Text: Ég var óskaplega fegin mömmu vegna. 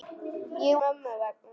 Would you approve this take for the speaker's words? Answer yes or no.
no